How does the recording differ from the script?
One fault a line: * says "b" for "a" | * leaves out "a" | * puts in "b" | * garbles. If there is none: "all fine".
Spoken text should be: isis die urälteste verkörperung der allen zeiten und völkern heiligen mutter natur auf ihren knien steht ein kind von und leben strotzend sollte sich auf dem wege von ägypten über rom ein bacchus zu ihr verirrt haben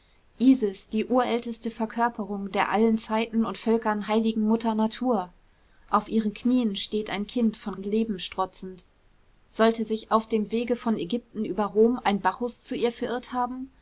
all fine